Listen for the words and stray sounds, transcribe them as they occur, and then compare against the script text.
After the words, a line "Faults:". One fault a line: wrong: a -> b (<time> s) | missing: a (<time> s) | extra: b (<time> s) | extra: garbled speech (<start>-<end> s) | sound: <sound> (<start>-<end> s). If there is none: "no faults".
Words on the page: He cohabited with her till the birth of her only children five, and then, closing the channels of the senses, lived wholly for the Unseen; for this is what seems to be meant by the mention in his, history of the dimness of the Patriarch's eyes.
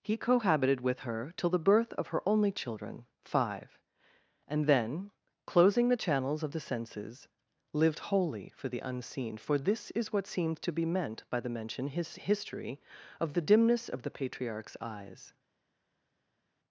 He cohabited with her till the birth of her only children five, and then, closing the channels of the senses, lived wholly for the Unseen; for this is what seems to be meant by the mention his, history of the dimness of the Patriarch's eyes.
Faults:
missing: in (11.9 s)